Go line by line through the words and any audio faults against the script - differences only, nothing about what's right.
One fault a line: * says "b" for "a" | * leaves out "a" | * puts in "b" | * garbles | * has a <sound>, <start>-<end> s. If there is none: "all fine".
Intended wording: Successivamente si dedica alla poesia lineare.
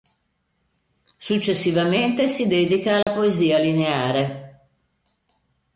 * has a dropout, 3.0-3.1 s